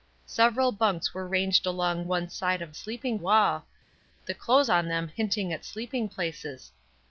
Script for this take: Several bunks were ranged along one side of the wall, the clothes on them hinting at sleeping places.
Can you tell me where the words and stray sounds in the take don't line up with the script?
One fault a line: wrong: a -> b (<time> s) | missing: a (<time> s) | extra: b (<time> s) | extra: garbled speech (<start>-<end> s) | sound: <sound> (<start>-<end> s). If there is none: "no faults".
wrong: the -> sleeping (2.7 s)